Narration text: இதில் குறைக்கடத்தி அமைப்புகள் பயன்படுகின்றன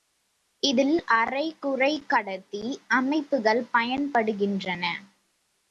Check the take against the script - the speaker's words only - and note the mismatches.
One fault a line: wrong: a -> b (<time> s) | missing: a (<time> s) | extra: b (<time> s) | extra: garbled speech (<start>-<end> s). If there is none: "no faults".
extra: அரை (1.2 s)